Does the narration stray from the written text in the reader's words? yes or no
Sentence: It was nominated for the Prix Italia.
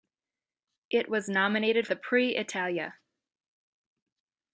yes